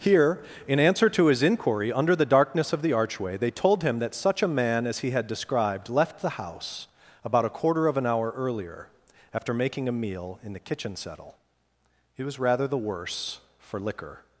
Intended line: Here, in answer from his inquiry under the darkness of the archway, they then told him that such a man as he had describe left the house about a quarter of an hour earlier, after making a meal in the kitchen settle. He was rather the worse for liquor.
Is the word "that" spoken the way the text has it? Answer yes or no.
yes